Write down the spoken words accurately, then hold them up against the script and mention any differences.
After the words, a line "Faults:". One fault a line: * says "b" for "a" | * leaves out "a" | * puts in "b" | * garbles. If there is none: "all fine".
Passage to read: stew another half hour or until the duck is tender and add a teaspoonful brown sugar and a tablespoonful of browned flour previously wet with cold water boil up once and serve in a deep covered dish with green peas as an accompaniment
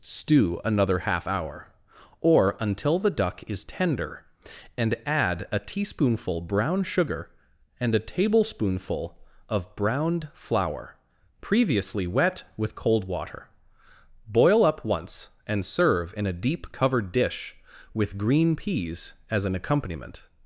stew another half hour or until the duck is tender and add a teaspoonful brown sugar and a tablespoonful of browned flour previously wet with cold water boil up once and serve in a deep covered dish with green peas as an accompaniment
Faults:
all fine